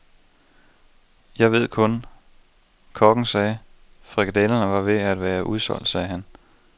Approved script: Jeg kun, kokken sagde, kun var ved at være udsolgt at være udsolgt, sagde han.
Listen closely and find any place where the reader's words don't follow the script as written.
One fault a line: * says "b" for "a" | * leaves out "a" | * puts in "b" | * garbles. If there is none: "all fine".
* puts in "ved"
* says "frikadellerne" for "kun"
* leaves out "at være udsolgt"